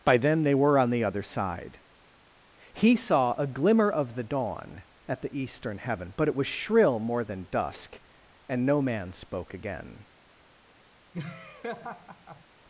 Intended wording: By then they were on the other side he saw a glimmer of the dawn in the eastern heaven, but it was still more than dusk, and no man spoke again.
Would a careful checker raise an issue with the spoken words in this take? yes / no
yes